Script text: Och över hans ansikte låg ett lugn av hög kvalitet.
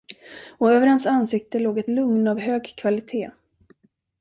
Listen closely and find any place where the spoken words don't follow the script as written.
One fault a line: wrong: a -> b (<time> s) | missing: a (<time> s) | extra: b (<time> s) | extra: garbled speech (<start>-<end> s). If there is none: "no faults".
no faults